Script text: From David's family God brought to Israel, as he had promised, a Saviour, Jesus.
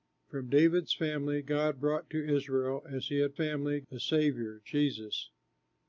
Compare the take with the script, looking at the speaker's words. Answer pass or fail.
fail